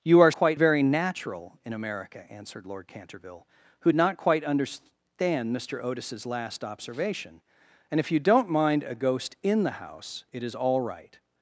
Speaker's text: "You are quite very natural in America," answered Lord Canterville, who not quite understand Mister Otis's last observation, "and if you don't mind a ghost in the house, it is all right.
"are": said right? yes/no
yes